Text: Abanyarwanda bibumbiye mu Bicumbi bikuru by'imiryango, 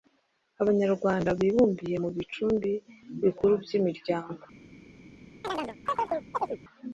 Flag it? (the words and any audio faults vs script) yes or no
yes